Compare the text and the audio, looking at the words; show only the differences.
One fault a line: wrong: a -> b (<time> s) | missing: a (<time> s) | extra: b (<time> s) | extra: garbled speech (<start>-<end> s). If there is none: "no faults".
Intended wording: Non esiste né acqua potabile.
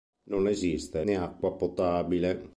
no faults